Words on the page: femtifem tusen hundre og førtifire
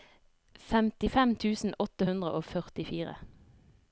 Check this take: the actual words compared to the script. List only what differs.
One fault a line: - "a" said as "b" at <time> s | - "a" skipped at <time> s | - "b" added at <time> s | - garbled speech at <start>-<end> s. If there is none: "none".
- "åtte" added at 1.9 s